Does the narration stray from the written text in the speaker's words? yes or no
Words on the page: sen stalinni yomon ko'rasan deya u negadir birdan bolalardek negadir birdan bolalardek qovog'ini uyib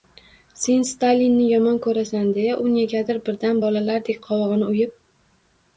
yes